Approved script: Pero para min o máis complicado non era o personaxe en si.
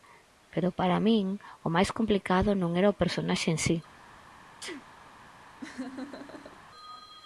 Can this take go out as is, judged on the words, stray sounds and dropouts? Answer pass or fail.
fail